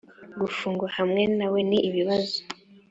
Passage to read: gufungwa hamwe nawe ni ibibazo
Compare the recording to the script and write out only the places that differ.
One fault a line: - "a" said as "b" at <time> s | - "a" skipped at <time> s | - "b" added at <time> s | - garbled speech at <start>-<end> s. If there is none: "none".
none